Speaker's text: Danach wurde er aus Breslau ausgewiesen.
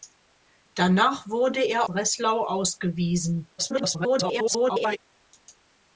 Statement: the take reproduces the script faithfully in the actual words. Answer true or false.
false